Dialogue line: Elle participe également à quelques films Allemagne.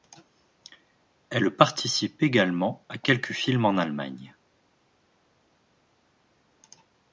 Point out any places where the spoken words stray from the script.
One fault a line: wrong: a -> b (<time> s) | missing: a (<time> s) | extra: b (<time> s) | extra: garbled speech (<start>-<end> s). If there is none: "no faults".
extra: en (3.6 s)